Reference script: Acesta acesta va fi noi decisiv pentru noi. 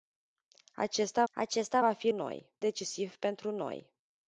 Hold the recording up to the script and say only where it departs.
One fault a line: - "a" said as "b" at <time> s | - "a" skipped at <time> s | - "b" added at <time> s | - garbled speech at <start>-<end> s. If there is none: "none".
none